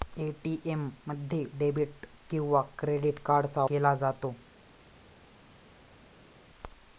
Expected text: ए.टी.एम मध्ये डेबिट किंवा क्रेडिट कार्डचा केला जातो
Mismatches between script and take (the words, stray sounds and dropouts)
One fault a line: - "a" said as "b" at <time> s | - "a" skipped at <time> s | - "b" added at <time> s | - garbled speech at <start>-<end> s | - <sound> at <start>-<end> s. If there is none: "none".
none